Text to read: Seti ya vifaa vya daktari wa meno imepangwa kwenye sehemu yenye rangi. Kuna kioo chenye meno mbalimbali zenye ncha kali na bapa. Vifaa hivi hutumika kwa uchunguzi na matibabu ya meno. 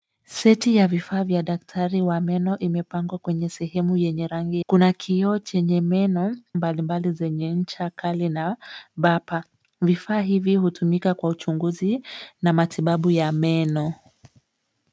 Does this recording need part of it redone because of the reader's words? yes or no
no